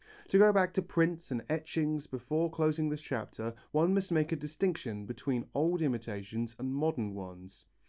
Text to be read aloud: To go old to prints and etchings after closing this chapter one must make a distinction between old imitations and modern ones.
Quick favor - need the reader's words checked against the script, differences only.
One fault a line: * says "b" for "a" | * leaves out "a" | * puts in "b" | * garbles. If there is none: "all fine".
* says "back" for "old"
* says "before" for "after"